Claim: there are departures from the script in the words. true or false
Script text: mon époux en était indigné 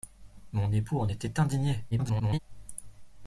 true